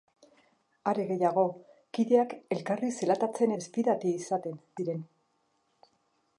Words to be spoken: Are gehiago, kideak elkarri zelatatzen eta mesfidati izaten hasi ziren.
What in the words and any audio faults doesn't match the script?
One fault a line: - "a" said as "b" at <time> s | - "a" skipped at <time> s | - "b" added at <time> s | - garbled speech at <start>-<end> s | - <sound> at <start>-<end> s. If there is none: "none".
- "eta" skipped at 3.5 s
- "hasi" skipped at 4.6 s